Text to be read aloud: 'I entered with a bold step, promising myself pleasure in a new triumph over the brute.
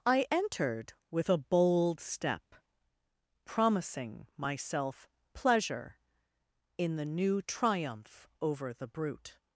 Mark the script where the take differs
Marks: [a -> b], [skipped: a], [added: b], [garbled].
'I entered with a bold step, promising myself pleasure in [a -> the] new triumph over the brute.